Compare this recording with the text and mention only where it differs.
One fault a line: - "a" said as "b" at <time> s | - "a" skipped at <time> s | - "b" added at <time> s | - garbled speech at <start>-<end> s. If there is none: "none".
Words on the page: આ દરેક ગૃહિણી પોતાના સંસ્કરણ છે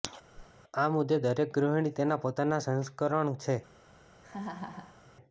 - "મુદ્દે" added at 0.9 s
- "તેના" added at 2.0 s